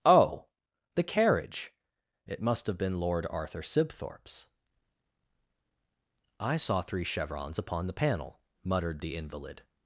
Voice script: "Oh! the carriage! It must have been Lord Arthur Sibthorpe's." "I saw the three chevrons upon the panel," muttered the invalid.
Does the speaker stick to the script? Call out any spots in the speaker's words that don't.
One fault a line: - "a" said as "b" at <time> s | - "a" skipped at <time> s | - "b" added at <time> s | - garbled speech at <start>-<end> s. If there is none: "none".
- "the" skipped at 6.8 s